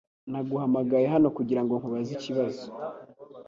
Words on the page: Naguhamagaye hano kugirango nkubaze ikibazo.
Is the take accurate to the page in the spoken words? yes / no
yes